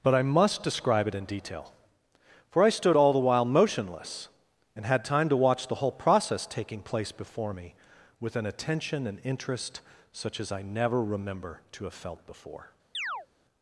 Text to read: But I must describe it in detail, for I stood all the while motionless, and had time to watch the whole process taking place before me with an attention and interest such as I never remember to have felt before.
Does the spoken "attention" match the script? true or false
true